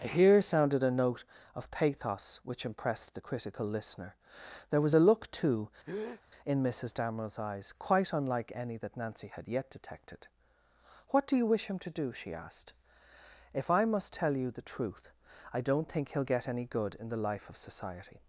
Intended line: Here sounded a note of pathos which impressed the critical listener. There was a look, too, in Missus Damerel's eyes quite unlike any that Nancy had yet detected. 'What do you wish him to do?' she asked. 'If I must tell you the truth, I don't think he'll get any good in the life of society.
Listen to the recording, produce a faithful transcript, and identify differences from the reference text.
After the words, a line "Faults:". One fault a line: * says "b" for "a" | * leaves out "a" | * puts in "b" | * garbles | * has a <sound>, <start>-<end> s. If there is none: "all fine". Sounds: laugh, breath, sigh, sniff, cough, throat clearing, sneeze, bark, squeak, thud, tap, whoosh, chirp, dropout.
Here sounded a note of pathos which impressed the critical listener. There was a look, too, in Missus Damerel's eyes quite unlike any that Nancy had yet detected. 'What do you wish him to do?' she asked. 'If I must tell you the truth, I don't think he'll get any good in the life of society.
Faults:
* has a breath, 5.8-6.2 s